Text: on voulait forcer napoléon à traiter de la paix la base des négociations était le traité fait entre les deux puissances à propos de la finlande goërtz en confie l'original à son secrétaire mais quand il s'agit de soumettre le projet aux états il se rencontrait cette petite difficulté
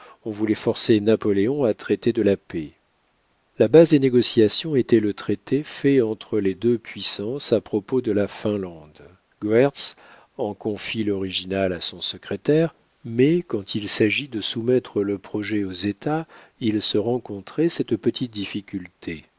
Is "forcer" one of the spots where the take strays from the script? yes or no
no